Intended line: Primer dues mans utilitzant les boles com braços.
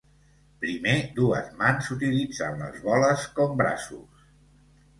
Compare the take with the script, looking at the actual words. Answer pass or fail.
pass